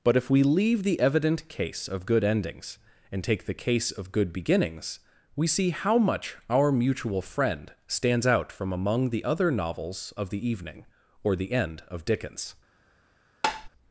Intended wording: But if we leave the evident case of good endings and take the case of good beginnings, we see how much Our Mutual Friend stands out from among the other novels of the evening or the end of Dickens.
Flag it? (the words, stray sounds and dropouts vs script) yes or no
yes